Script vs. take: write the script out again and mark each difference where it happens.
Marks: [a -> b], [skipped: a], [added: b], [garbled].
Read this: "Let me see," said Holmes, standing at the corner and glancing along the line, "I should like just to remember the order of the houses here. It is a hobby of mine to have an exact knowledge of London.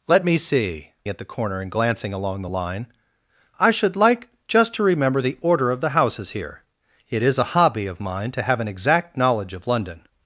"Let me see," [skipped: said Holmes, standing] at the corner and glancing along the line, "I should like just to remember the order of the houses here. It is a hobby of mine to have an exact knowledge of London.